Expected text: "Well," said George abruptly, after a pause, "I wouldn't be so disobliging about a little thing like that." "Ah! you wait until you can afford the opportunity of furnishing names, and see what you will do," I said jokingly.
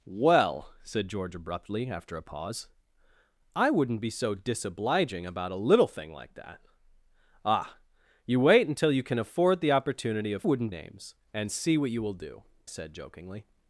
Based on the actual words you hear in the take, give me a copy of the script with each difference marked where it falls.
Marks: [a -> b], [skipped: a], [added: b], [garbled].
"Well," said George abruptly, after a pause, "I wouldn't be so disobliging about a little thing like that." "Ah! you wait until you can afford the opportunity of [furnishing -> wouldn't] names, and see what you will do," [skipped: I] said jokingly.